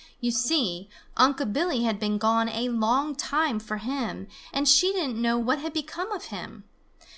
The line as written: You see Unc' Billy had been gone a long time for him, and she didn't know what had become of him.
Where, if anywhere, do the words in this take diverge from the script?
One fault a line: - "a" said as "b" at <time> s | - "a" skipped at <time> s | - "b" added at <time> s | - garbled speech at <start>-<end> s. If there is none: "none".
none